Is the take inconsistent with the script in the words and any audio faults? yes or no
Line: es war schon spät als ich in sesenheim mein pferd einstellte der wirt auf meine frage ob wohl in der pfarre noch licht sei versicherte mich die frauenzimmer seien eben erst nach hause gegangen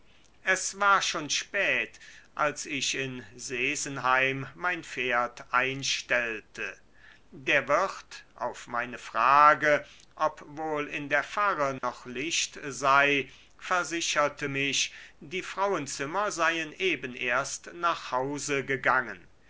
yes